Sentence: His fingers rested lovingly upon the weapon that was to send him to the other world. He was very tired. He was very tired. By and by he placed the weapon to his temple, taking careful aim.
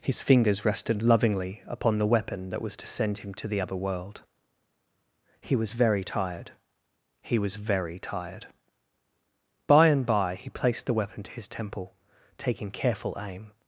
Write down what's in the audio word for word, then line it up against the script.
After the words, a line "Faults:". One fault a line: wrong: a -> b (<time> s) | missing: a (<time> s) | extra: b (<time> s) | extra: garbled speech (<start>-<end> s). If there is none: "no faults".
His fingers rested lovingly upon the weapon that was to send him to the other world. He was very tired. He was very tired. By and by he placed the weapon to his temple, taking careful aim.
Faults:
no faults